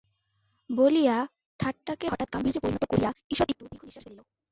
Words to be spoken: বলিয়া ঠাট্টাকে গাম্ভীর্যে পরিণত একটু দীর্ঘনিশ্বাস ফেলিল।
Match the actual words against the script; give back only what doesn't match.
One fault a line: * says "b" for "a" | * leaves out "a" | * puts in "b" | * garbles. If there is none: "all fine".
* puts in "হঠাৎ"
* puts in "করিয়া ঈষৎ"